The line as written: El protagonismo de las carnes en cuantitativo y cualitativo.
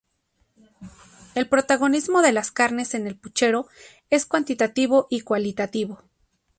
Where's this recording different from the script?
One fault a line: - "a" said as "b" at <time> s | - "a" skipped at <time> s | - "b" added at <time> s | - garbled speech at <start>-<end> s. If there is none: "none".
- "el puchero es" added at 3.0 s